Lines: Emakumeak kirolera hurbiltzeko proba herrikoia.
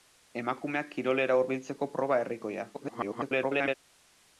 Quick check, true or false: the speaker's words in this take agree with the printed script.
false